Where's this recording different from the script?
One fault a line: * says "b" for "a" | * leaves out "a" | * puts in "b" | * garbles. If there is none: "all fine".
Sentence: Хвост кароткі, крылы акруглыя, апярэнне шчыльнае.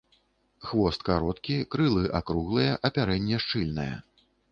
all fine